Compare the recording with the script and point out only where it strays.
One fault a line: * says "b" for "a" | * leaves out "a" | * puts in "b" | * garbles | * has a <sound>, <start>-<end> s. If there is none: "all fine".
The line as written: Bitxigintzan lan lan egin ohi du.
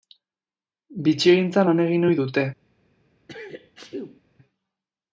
* leaves out "lan"
* says "dute" for "du"
* has a sneeze, 3.3-4.2 s